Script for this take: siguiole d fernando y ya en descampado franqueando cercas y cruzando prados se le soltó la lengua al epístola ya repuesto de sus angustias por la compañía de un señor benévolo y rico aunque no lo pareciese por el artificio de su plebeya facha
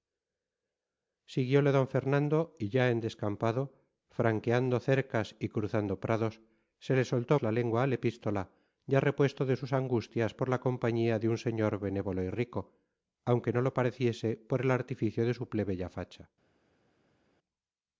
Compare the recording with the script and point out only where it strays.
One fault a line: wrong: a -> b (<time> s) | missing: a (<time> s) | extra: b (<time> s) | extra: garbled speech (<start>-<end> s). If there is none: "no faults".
no faults